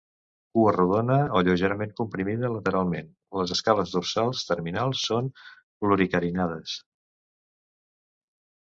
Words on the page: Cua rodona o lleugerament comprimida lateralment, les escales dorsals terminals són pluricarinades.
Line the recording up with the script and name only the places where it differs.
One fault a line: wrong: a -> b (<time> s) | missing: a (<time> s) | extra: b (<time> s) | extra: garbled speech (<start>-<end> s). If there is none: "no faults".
no faults